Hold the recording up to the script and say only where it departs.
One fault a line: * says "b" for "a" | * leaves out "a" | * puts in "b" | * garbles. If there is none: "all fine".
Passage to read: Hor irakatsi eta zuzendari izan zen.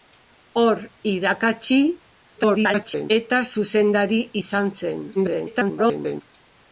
* garbles
* garbles